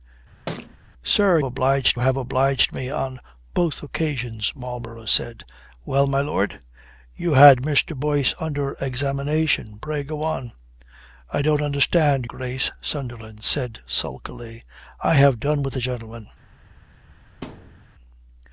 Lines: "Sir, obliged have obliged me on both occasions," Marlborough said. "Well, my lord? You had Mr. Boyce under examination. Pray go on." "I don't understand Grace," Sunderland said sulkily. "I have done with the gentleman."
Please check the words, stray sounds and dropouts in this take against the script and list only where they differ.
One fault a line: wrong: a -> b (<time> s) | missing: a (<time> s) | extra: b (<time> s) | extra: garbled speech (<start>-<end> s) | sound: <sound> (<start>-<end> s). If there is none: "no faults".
sound: thud (0.5-0.8 s)
sound: thud (17.4-17.9 s)